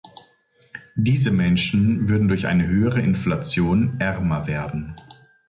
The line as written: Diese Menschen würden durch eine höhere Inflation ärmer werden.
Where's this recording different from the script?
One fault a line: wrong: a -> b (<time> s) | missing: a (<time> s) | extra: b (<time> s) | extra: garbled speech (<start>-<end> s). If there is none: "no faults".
no faults